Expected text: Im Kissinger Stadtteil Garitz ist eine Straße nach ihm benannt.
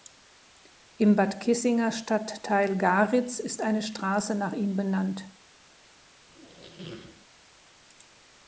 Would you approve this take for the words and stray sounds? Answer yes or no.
no